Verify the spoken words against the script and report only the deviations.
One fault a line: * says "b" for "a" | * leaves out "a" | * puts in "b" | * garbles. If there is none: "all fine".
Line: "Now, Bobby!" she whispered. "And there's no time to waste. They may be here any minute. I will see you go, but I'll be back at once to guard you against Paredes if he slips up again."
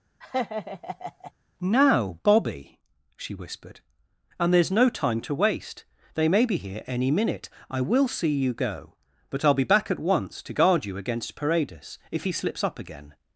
all fine